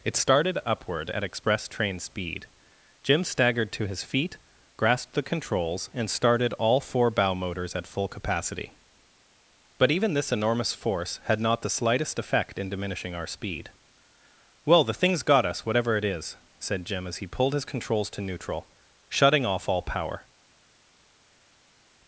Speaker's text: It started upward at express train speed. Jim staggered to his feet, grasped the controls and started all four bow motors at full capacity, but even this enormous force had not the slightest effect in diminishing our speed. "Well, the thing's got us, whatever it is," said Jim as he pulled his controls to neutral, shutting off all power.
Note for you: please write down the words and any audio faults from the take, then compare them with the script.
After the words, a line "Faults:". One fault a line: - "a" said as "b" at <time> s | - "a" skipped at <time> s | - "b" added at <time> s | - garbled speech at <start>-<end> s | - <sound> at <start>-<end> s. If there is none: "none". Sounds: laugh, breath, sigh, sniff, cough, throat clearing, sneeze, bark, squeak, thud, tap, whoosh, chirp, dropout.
It started upward at express train speed. Jim staggered to his feet, grasped the controls and started all four bow motors at full capacity, but even this enormous force had not the slightest effect in diminishing our speed. "Well, the thing's got us, whatever it is," said Jim as he pulled his controls to neutral, shutting off all power.
Faults:
none